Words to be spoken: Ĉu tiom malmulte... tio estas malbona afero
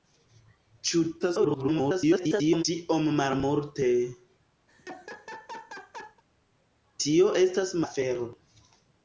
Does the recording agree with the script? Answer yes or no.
no